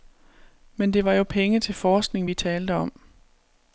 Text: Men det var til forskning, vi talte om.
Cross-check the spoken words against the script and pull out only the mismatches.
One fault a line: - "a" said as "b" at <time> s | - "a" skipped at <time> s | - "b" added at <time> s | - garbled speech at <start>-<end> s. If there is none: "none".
- "jo penge" added at 1.1 s